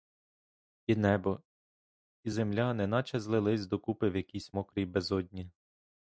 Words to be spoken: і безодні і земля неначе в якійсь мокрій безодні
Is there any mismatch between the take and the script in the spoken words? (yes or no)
yes